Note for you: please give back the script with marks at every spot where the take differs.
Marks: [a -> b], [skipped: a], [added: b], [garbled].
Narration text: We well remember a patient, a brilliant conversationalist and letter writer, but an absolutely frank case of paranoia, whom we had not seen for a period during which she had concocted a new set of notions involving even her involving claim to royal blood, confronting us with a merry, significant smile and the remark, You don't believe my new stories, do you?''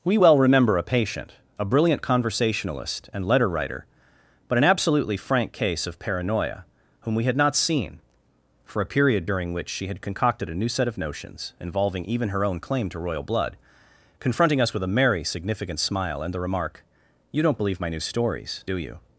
We well remember a patient, a brilliant conversationalist and letter writer, but an absolutely frank case of paranoia, whom we had not seen for a period during which she had concocted a new set of notions involving even her [involving -> own] claim to royal blood, confronting us with a merry, significant smile and the remark, You don't believe my new stories, do you?''